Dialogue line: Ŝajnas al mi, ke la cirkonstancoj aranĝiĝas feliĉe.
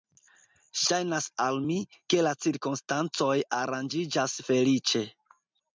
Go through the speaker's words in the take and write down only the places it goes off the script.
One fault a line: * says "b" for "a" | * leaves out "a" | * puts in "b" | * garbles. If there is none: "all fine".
all fine